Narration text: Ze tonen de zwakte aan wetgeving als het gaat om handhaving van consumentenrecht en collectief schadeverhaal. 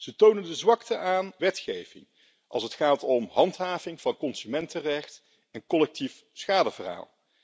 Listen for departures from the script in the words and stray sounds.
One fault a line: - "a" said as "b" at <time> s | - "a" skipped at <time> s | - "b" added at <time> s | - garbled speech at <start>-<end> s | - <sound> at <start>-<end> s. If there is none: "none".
none